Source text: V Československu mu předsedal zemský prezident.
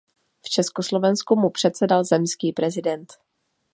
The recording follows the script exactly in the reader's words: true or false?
true